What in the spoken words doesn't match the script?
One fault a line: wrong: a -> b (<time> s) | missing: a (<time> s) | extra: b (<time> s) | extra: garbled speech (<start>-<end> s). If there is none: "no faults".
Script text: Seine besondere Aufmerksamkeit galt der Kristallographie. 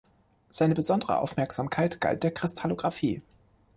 no faults